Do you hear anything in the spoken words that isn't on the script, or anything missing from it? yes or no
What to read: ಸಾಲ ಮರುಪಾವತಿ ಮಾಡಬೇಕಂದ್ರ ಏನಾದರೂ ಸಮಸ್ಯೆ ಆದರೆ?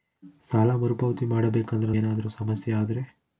no